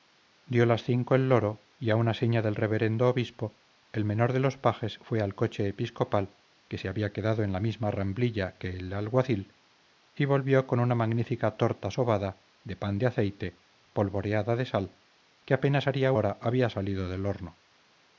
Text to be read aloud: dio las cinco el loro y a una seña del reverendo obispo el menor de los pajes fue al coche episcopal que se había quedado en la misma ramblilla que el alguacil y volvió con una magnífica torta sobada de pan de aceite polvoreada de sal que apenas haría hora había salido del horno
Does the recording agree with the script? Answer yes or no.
yes